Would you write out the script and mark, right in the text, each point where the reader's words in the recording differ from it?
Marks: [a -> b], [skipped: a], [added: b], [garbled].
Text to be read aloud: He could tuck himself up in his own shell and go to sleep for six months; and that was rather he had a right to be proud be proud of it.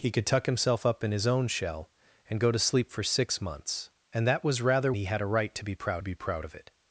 He could tuck himself up in his own shell and go to sleep for six months; and that was rather he had a right to be proud be proud of it.